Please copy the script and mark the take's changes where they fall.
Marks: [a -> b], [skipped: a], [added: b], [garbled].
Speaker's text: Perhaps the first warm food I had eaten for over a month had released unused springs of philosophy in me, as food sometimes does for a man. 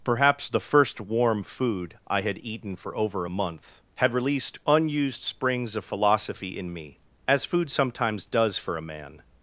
Perhaps the first warm food I had eaten for over a month had released unused springs of philosophy in me, as food sometimes does for a man.